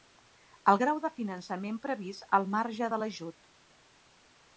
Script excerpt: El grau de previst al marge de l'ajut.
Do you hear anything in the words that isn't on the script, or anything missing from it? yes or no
yes